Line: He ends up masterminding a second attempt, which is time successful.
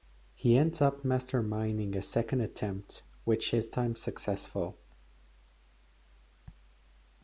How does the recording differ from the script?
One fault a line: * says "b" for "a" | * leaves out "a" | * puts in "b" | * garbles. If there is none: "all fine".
all fine